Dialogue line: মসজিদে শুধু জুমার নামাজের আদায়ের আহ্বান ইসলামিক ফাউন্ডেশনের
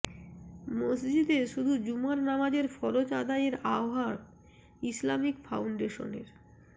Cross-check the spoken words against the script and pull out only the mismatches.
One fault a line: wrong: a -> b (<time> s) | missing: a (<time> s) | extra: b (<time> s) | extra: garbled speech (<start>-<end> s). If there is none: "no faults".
extra: ফরজ (2.8 s)